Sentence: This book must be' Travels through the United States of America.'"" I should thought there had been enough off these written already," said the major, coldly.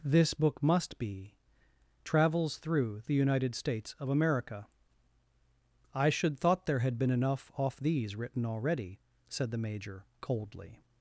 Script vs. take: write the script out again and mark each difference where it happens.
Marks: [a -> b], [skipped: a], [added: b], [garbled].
This book must be' Travels through the United States of America.'"" I should thought there had been enough off these written already," said the major, coldly.